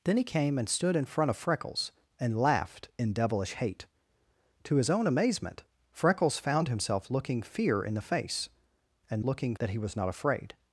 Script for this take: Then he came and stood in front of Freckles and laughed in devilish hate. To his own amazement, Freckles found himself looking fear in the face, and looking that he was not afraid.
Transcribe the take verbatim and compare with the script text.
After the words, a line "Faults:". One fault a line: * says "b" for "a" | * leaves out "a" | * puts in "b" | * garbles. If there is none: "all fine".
Then he came and stood in front of Freckles and laughed in devilish hate. To his own amazement, Freckles found himself looking fear in the face, and looking that he was not afraid.
Faults:
all fine